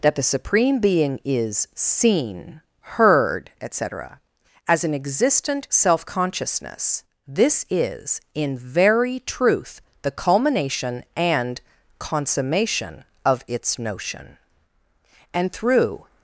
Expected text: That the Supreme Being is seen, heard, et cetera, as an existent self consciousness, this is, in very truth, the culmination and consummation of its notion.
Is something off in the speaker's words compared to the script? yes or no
yes